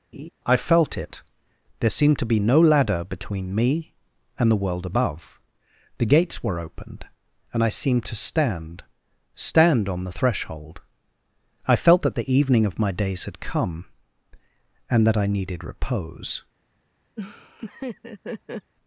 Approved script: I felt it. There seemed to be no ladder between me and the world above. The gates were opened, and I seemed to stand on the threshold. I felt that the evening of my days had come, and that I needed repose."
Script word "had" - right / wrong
right